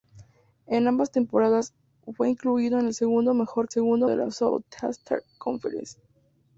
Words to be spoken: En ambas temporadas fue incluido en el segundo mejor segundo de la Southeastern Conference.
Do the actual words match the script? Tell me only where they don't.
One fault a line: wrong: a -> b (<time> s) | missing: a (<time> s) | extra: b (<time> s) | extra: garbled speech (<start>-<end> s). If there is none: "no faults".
no faults